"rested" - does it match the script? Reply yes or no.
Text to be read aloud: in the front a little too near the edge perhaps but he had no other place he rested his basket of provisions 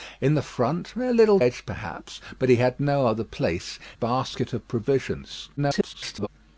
no